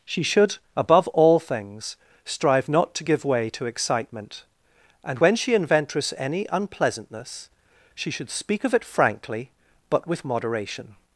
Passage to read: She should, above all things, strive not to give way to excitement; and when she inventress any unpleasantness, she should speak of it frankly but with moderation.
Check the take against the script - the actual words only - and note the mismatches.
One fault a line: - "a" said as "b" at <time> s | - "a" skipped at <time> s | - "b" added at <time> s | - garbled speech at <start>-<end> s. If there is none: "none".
none